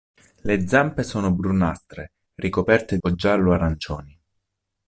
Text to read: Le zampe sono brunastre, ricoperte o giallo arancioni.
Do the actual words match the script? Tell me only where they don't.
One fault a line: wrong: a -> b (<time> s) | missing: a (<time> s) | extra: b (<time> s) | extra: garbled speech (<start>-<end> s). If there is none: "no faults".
no faults